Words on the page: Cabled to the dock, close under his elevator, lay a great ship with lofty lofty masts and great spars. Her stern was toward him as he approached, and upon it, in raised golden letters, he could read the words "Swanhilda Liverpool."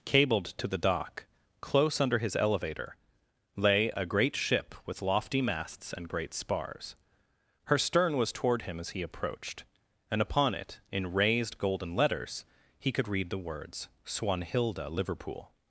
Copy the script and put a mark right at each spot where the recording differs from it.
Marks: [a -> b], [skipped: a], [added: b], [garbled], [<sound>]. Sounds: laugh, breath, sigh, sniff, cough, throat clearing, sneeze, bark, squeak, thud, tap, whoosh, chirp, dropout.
Cabled to the dock, close under his elevator, lay a great ship with lofty [skipped: lofty] masts and great spars. Her stern was toward him as he approached, and upon it, in raised golden letters, he could read the words "Swanhilda Liverpool."